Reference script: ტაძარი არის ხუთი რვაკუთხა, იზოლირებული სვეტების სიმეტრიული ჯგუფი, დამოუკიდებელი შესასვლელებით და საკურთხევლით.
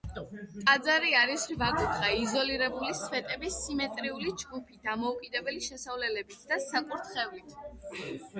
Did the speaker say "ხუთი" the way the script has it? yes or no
no